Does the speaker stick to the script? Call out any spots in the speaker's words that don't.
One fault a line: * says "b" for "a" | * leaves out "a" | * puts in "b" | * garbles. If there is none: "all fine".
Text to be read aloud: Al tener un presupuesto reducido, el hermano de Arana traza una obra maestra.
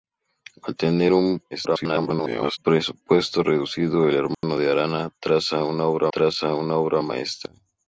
* garbles
* puts in "traza una obra"